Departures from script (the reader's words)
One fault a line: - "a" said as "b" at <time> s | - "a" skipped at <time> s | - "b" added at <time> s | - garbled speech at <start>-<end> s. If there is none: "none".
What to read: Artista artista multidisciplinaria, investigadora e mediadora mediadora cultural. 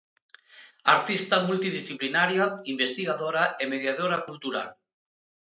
- "artista" skipped at 1.4 s
- "mediadora" skipped at 4.2 s